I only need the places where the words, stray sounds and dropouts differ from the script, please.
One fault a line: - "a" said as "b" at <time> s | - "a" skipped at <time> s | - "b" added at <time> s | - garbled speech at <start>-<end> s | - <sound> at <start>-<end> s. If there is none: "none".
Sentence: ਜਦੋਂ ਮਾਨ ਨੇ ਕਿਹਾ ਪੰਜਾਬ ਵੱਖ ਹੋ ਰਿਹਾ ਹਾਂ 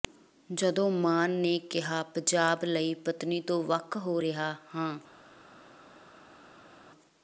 - "ਲਈ ਪਤਨੀ ਤੋਂ" added at 2.6 s